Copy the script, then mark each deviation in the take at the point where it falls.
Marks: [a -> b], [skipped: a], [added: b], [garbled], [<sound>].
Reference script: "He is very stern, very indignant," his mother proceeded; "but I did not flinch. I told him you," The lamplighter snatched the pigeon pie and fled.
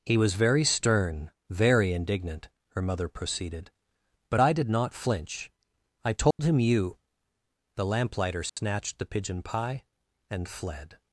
"He [is -> was] very stern, very indignant," [his -> her] mother proceeded; "but I did not flinch. I told [dropout] him you," The lamplighter snatched [dropout] the pigeon pie and fled.